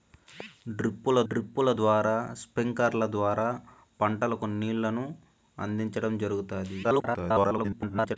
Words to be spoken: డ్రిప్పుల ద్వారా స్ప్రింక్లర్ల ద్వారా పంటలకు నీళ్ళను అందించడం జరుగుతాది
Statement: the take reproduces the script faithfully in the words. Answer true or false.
false